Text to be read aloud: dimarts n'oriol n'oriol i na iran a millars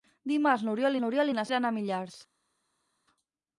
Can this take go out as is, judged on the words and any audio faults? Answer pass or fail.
pass